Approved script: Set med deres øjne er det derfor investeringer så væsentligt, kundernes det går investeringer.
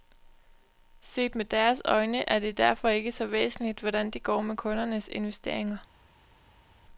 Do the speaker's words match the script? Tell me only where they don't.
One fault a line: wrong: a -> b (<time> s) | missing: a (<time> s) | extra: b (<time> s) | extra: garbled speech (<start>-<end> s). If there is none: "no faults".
wrong: investeringer -> ikke (2.9 s)
wrong: kundernes -> hvordan (3.8 s)
extra: med kundernes (4.4 s)